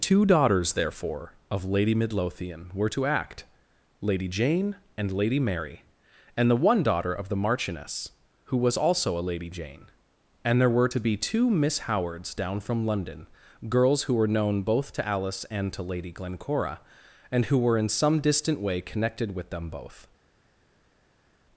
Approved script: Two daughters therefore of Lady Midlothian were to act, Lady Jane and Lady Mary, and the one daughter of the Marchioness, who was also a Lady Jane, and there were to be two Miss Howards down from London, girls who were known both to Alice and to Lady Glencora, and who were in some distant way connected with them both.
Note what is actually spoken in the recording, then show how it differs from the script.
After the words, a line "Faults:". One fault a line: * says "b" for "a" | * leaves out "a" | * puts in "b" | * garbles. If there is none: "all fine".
Two daughters therefore of Lady Midlothian were to act, Lady Jane and Lady Mary, and the one daughter of the Marchioness, who was also a Lady Jane, and there were to be two Miss Howards down from London, girls who were known both to Alice and to Lady Glencora, and who were in some distant way connected with them both.
Faults:
all fine